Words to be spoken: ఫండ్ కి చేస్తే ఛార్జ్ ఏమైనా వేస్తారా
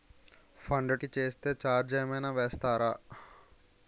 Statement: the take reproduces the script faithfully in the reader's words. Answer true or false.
true